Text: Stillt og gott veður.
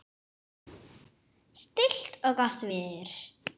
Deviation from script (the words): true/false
false